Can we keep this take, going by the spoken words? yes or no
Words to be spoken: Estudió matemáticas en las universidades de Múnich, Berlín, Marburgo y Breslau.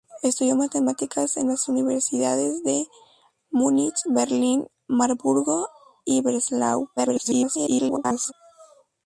no